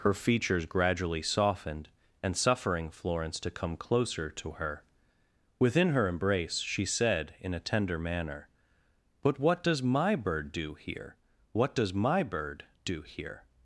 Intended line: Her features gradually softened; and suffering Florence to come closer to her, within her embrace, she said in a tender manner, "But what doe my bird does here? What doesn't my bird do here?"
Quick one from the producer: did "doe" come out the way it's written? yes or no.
no